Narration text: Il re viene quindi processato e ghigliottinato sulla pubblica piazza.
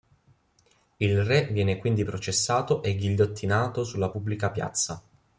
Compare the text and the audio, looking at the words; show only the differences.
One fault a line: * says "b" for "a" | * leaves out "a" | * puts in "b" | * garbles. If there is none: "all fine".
all fine